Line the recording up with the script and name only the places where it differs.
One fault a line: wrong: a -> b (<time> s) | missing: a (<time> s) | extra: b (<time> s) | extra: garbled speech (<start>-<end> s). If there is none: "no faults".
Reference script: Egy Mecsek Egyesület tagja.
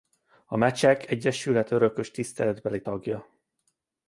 wrong: Egy -> A (0.5 s)
extra: örökös tiszteletbeli (1.7 s)